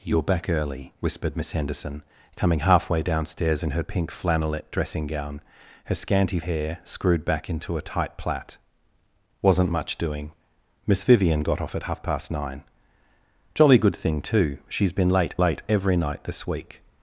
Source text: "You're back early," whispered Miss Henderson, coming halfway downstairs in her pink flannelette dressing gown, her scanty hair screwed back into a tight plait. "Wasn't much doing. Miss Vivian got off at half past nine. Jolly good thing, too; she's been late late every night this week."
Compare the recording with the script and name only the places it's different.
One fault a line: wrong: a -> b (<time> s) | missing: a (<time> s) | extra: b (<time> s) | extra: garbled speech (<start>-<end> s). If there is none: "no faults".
no faults